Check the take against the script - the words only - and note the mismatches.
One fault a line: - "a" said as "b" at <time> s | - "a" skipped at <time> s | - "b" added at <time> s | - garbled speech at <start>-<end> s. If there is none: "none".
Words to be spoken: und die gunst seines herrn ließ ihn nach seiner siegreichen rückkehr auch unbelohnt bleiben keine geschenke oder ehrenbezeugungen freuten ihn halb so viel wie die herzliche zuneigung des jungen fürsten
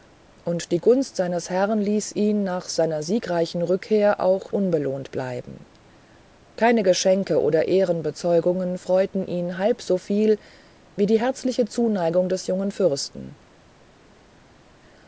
none